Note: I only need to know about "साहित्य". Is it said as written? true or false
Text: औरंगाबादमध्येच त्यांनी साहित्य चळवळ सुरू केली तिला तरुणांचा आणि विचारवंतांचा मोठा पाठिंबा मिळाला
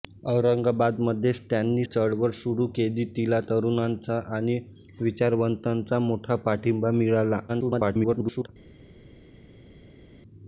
false